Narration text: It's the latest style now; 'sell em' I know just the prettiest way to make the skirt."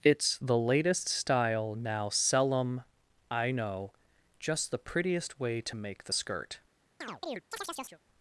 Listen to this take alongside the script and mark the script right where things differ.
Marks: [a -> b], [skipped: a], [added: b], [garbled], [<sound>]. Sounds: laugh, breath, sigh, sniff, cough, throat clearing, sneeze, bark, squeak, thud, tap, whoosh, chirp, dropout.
It's the latest style now; 'sell em' I know just the prettiest way to make the skirt." [chirp]